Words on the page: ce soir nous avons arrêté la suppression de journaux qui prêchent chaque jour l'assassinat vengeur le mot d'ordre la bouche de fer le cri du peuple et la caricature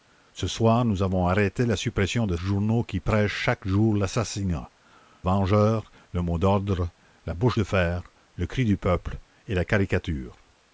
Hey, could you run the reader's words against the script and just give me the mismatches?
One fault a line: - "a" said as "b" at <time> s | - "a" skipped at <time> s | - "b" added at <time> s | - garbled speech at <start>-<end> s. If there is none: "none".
none